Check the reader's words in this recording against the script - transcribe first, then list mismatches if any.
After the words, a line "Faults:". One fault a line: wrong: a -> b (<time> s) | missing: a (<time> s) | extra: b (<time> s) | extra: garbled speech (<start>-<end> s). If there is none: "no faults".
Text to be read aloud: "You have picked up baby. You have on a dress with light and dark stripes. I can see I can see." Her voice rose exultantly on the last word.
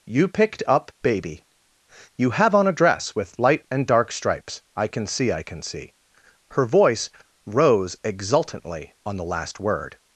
"You picked up baby. You have on a dress with light and dark stripes. I can see I can see." Her voice rose exultantly on the last word.
Faults:
missing: have (0.3 s)